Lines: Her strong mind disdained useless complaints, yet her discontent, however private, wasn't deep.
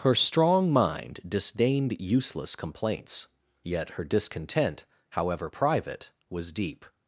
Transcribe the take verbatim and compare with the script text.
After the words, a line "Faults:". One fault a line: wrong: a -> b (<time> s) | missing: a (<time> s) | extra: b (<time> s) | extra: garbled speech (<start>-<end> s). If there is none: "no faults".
Her strong mind disdained useless complaints, yet her discontent, however private, was deep.
Faults:
wrong: wasn't -> was (6.3 s)